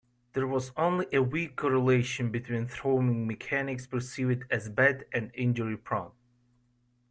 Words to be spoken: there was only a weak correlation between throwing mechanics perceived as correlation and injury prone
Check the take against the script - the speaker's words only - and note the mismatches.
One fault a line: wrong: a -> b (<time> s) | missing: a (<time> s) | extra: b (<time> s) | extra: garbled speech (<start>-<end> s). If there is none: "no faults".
wrong: correlation -> bad (4.7 s)